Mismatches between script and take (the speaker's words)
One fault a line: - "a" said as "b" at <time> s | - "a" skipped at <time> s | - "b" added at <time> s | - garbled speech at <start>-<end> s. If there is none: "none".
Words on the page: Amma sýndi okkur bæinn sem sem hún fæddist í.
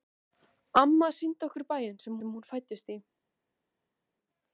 none